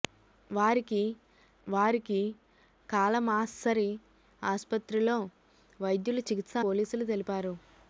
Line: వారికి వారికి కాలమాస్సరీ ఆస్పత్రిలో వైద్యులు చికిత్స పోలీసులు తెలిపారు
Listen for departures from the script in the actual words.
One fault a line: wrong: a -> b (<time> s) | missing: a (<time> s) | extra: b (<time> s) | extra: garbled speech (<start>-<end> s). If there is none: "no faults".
no faults